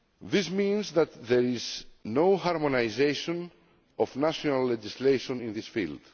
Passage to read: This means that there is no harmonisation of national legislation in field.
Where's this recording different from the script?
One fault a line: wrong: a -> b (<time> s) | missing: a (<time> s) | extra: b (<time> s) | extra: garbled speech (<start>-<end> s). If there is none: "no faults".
extra: this (5.5 s)